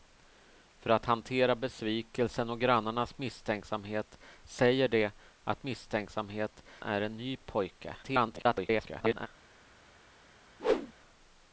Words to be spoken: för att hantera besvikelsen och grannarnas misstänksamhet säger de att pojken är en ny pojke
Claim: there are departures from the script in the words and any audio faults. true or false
true